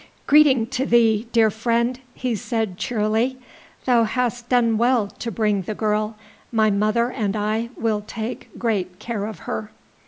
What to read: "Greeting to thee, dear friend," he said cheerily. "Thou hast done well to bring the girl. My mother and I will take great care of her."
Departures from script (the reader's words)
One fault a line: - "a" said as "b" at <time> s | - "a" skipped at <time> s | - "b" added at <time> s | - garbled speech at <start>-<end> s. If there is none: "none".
none